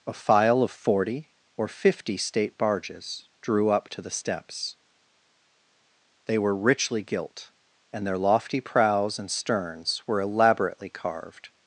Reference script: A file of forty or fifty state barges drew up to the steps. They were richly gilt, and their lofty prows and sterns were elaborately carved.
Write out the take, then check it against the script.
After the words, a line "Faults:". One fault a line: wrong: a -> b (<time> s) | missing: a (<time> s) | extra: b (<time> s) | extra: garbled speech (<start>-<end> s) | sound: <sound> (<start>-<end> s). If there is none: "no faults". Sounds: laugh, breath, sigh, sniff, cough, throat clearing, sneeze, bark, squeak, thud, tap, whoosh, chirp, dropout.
A file of forty or fifty state barges drew up to the steps. They were richly gilt, and their lofty prows and sterns were elaborately carved.
Faults:
no faults